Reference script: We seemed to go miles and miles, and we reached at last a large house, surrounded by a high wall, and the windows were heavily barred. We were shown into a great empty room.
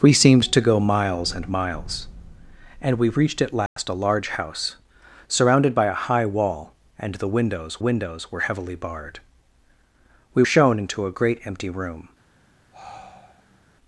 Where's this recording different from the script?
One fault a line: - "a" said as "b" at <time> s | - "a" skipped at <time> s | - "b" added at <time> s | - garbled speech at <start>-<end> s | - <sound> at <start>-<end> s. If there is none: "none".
- dropout at 3.7-3.8 s
- "windows" added at 7.8 s
- "were" skipped at 10.4 s
- sigh at 12.7-13.6 s